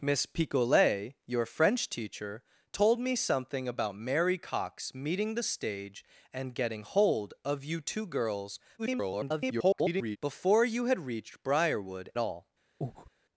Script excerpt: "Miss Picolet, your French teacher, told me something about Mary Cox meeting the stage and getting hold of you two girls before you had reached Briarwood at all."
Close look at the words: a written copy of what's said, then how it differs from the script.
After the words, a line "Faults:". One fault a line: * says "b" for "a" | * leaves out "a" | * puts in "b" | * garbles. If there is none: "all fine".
"Miss Picolet, your French teacher, told me something about Mary Cox meeting the stage and getting hold of you two girls [garbled] before you had reached Briarwood all."
Faults:
* garbles
* leaves out "at"